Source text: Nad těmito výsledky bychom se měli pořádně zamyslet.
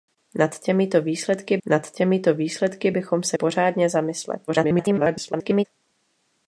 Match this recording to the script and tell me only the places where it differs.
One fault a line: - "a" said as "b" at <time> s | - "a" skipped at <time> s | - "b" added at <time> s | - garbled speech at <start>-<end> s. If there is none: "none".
- "nad těmito výsledky" added at 1.7 s
- "měli" skipped at 3.4 s
- garbled speech at 4.5-5.7 s